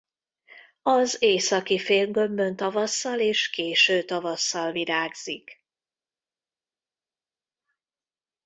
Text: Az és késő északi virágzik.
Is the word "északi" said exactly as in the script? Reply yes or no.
no